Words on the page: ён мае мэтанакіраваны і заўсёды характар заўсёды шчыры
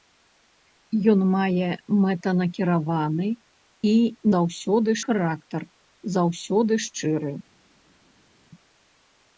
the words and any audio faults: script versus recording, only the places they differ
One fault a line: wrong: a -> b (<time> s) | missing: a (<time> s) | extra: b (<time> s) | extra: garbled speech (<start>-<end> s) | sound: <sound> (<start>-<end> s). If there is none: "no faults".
no faults